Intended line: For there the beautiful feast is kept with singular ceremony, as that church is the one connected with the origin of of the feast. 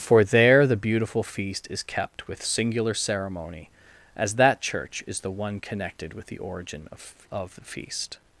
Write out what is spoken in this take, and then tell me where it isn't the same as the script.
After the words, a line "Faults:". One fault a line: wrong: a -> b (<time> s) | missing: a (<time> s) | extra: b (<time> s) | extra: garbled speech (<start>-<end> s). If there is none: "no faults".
For there the beautiful feast is kept with singular ceremony, as that church is the one connected with the origin of of the feast.
Faults:
no faults